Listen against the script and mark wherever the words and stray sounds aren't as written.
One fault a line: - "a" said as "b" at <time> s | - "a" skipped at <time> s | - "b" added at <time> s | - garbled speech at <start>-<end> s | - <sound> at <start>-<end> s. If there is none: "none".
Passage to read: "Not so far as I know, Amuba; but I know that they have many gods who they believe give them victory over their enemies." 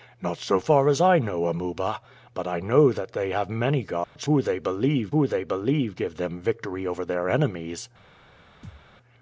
- dropout at 4.0-4.2 s
- "who they believe" added at 5.1 s
- thud at 8.6-8.9 s